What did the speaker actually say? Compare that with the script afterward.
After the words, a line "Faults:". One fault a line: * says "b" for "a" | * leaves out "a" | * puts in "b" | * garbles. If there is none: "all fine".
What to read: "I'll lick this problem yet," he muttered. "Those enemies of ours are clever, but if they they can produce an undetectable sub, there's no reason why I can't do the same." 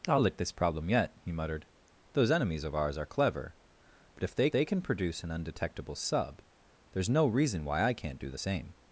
"I'll lick this problem yet," he muttered. "Those enemies of ours are clever, but if they they can produce an undetectable sub, there's no reason why I can't do the same."
Faults:
all fine